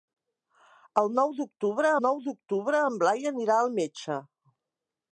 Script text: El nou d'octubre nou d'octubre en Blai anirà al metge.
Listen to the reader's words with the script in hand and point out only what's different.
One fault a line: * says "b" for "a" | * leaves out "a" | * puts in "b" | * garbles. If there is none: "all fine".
all fine